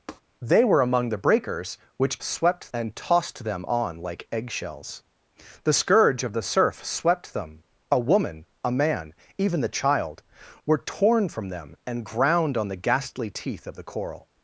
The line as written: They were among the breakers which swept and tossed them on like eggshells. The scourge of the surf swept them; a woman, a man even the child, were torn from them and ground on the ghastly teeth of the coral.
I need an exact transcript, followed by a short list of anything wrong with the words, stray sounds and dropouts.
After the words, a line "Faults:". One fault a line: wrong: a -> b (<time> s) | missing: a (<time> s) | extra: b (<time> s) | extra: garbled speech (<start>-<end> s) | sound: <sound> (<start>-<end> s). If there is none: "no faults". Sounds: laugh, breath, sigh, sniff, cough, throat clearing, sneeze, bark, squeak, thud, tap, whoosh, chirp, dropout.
They were among the breakers which swept and tossed them on like eggshells. The scourge of the surf swept them; a woman, a man even the child, were torn from them and ground on the ghastly teeth of the coral.
Faults:
sound: tap (0.1-0.2 s)